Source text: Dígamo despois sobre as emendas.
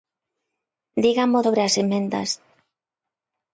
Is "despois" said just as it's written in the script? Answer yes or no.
no